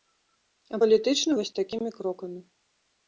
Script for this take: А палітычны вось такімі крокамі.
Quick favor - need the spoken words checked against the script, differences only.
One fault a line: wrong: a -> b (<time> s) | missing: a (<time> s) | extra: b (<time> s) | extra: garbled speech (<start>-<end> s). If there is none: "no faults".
no faults